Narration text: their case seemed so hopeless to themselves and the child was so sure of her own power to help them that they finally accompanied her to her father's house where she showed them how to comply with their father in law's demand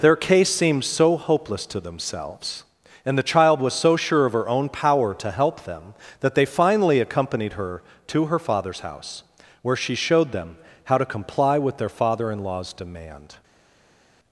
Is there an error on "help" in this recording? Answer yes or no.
no